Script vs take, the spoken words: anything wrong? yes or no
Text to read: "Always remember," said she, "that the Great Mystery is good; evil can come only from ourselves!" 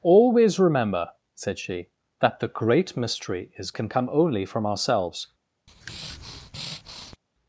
yes